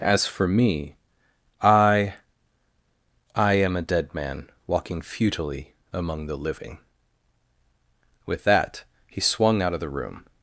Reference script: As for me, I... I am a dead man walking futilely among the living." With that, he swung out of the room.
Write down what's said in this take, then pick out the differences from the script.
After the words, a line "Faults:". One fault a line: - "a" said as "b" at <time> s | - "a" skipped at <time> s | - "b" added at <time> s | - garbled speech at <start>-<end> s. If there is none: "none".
As for me, I... I am a dead man walking futilely among the living." With that, he swung out of the room.
Faults:
none